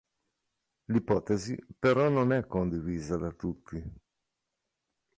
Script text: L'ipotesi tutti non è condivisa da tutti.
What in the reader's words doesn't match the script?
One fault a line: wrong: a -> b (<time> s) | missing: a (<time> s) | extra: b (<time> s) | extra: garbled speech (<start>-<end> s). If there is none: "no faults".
wrong: tutti -> però (1.8 s)